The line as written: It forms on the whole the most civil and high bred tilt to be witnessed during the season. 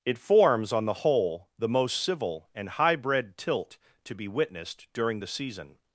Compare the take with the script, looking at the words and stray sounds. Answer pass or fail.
pass